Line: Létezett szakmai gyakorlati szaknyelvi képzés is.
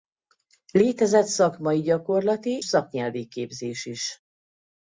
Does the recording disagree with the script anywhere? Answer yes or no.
no